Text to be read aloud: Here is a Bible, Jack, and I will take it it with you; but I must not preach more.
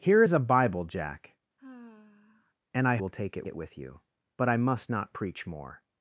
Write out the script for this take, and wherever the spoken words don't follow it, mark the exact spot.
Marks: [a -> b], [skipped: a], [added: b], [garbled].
Here is a Bible, Jack, and I will take it it with you; but I must not preach more.